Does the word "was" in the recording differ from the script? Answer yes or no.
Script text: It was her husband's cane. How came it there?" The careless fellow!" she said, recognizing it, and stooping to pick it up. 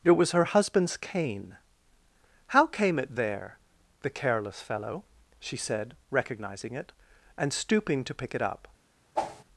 no